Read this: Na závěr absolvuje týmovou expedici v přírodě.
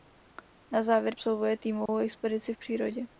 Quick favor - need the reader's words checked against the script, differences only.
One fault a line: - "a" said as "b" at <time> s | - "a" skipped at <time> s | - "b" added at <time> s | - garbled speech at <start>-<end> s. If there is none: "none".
none